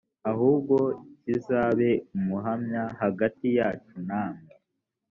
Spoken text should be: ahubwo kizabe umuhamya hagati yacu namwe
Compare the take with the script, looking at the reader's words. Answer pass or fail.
pass